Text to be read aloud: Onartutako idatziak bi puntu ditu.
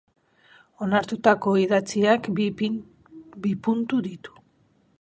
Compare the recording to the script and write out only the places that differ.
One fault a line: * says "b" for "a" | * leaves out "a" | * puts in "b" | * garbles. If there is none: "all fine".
all fine